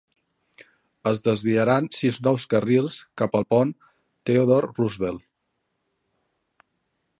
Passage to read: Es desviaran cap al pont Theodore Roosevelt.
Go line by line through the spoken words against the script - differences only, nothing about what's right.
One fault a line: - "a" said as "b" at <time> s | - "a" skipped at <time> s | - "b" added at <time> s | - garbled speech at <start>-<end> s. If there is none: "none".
- "sis nous carrils" added at 2.0 s